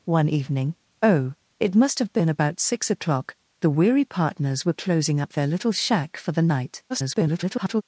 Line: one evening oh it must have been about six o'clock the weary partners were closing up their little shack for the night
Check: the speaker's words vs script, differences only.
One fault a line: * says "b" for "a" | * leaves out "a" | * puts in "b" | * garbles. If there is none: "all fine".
* garbles